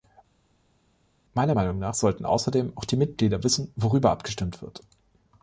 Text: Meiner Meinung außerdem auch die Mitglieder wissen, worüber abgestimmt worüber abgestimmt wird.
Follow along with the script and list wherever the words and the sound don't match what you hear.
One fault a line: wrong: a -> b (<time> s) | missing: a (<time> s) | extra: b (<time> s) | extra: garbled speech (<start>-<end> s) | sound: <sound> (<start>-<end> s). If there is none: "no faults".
extra: nach sollten (1.8 s)
missing: worüber abgestimmt (4.6 s)